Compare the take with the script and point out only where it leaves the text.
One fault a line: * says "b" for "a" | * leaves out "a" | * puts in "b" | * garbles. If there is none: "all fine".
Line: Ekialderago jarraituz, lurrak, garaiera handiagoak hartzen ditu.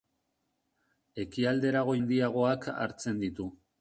* leaves out "jarraituz lurrak garaiera"